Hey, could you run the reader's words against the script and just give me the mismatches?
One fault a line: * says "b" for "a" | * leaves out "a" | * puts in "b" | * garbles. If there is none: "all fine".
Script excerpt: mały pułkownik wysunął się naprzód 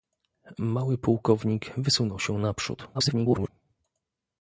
* garbles